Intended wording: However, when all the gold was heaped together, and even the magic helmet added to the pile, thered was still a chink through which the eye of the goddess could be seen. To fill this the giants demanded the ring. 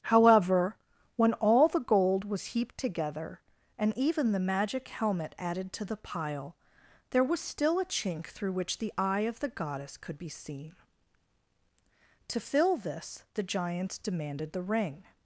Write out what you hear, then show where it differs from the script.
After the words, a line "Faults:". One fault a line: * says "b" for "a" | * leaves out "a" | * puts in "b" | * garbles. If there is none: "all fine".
However, when all the gold was heaped together, and even the magic helmet added to the pile, there was still a chink through which the eye of the goddess could be seen. To fill this the giants demanded the ring.
Faults:
* says "there" for "thered"